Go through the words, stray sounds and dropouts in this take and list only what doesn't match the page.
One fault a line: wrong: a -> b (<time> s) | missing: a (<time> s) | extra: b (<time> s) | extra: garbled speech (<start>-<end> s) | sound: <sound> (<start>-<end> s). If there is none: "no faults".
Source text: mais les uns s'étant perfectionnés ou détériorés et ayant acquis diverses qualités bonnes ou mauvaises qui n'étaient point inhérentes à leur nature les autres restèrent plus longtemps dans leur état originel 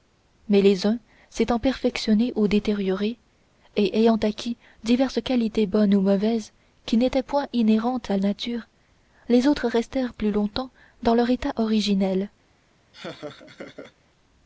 missing: leur (8.2 s)
sound: laugh (12.9-13.9 s)